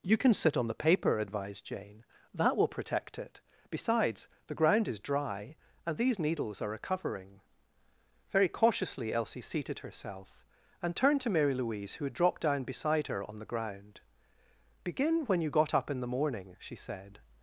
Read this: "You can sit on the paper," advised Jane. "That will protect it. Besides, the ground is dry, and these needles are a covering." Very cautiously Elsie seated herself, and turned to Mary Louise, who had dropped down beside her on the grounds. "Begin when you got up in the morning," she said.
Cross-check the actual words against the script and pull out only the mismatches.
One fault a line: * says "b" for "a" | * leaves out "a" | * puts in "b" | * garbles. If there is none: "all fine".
* says "ground" for "grounds"